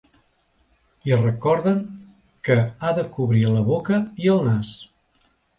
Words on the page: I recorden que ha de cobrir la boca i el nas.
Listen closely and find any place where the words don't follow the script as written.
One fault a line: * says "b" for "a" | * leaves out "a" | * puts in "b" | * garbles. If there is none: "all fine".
all fine